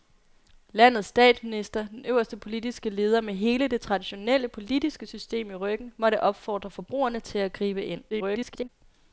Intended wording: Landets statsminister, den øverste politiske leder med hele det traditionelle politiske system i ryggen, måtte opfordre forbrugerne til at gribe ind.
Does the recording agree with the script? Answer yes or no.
no